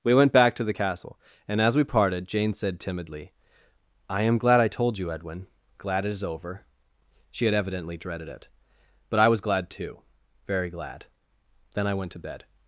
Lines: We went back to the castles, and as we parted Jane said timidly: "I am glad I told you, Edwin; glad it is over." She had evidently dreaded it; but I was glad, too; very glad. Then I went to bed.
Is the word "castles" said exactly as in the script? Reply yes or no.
no